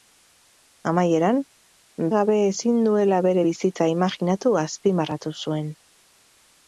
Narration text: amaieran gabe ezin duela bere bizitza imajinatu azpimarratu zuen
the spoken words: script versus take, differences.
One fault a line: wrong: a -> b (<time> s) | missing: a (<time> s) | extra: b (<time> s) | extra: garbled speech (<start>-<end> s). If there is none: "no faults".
no faults